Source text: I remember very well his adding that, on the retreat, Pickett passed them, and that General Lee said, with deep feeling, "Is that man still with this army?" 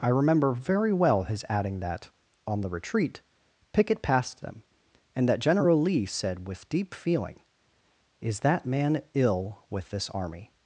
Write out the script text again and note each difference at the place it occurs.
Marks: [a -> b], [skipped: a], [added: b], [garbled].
I remember very well his adding that, on the retreat, Pickett passed them, and that General Lee said, with deep feeling, "Is that man [still -> ill] with this army?"